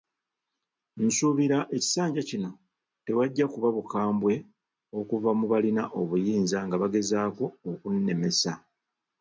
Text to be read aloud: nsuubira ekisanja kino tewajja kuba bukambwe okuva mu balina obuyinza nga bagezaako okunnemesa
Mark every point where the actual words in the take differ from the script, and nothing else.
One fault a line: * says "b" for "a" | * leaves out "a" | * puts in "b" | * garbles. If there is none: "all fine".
all fine